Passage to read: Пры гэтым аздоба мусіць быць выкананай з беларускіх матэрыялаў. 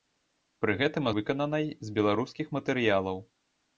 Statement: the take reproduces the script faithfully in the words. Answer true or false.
false